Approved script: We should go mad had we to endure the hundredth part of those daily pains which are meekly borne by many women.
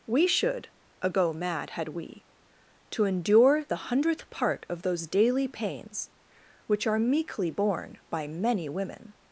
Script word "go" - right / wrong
wrong